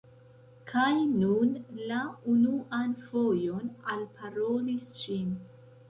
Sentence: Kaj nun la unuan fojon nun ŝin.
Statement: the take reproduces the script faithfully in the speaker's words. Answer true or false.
false